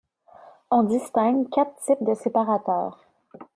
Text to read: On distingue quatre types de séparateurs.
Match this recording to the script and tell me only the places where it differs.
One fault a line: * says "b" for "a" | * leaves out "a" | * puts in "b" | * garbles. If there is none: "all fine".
all fine